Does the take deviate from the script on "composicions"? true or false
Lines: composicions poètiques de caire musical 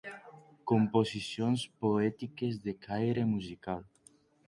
false